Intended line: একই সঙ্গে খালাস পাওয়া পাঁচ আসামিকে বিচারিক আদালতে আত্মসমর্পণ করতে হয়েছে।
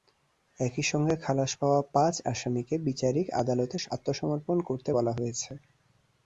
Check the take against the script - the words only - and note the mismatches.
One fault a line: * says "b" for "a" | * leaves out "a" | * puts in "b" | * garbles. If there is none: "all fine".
* puts in "বলা"